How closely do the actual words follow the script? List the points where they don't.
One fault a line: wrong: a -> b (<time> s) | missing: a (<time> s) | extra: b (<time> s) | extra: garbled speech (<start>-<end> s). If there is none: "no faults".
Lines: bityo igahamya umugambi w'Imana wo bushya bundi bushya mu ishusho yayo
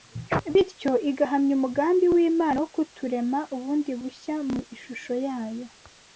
wrong: bushya -> kuturema (2.8 s)